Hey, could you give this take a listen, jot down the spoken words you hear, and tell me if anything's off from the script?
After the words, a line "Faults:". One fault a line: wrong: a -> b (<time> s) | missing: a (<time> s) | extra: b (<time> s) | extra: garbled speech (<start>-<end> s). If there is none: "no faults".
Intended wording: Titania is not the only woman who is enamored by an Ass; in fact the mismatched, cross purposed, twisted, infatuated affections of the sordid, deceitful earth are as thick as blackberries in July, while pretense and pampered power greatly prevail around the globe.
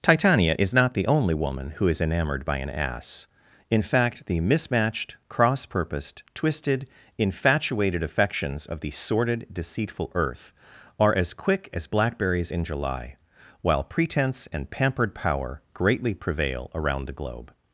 Titania is not the only woman who is enamored by an Ass; in fact the mismatched, cross purposed, twisted, infatuated affections of the sordid, deceitful earth are as quick as blackberries in July, while pretense and pampered power greatly prevail around the globe.
Faults:
wrong: thick -> quick (11.3 s)